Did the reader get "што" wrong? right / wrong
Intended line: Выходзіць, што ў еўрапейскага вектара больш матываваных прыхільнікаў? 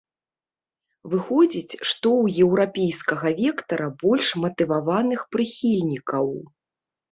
right